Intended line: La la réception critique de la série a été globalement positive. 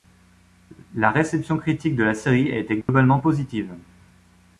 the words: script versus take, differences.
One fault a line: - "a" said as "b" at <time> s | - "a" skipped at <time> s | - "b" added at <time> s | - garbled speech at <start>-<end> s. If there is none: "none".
- "la" skipped at 1.1 s